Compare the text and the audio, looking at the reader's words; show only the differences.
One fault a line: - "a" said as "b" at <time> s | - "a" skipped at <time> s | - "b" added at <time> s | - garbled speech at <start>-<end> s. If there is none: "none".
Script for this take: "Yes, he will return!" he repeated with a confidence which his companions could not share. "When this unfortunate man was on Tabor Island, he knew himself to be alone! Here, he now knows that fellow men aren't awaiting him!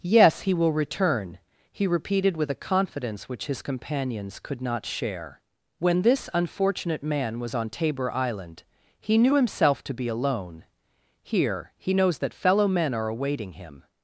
- "now" skipped at 11.9 s
- "aren't" said as "are" at 12.9 s